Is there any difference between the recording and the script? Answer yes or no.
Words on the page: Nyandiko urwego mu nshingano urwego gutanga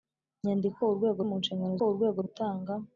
no